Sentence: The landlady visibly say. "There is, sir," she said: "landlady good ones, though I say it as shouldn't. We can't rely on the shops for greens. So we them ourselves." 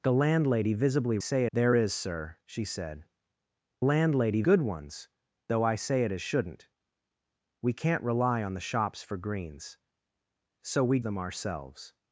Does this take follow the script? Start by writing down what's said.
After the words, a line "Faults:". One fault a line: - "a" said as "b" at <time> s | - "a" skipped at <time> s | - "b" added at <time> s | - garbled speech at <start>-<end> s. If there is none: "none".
The landlady visibly say. "There is, sir," she said: "landlady good ones, though I say it as shouldn't. We can't rely on the shops for greens. So we them ourselves."
Faults:
none